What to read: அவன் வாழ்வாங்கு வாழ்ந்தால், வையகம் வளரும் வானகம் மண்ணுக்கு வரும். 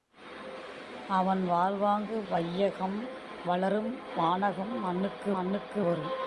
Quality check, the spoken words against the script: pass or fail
fail